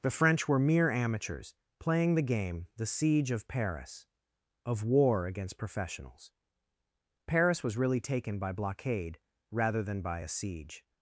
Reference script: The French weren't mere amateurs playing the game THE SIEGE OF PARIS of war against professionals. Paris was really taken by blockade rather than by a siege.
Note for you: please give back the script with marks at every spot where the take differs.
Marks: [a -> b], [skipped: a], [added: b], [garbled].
The French [weren't -> were] mere amateurs playing the game THE SIEGE OF PARIS of war against professionals. Paris was really taken by blockade rather than by a siege.